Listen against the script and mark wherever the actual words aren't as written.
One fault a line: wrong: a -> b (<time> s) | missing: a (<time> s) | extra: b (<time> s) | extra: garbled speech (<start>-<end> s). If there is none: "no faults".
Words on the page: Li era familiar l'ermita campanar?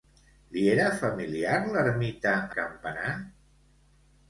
no faults